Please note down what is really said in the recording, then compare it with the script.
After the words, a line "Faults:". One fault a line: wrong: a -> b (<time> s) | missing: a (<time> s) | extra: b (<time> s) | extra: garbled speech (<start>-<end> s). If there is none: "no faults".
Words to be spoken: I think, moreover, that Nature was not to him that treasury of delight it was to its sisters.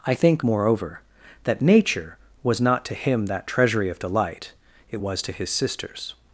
I think, moreover, that Nature was not to him that treasury of delight it was to his sisters.
Faults:
wrong: its -> his (5.3 s)